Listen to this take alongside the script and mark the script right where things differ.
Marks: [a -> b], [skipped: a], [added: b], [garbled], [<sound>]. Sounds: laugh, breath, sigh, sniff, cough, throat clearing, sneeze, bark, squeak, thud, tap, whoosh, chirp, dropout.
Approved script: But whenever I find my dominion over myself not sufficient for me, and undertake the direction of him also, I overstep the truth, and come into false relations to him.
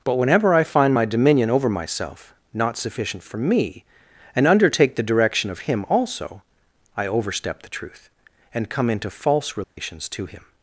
But whenever I find my dominion over myself not sufficient for me, and undertake the direction of him also, I overstep the truth, and come into false relations [dropout] to him.